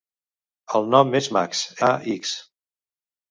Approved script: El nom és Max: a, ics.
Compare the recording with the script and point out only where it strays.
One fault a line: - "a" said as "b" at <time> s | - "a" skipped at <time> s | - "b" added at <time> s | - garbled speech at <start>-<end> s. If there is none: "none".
none